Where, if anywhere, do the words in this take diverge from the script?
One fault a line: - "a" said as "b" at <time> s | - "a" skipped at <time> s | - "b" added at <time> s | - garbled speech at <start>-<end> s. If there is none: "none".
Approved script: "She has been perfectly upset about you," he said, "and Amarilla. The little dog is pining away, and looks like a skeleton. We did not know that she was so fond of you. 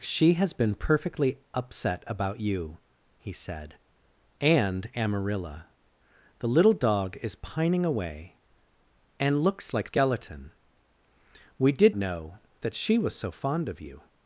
- "a" skipped at 9.9 s
- "not" skipped at 12.0 s